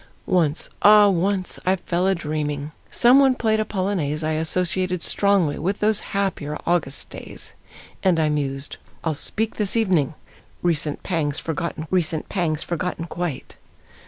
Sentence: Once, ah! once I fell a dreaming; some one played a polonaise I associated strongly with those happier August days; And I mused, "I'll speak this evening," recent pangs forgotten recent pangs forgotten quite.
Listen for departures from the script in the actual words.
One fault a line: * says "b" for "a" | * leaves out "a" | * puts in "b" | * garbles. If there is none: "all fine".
all fine